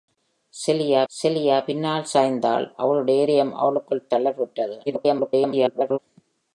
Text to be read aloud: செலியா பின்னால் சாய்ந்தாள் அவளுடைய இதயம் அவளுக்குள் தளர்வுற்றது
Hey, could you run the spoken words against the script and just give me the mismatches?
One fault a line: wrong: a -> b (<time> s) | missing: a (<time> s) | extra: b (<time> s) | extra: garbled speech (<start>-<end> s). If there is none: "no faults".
extra: செலியா (1.1 s)
extra: garbled speech (4.9-6.0 s)